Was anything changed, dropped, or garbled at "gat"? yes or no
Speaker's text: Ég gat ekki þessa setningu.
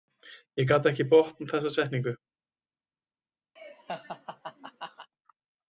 no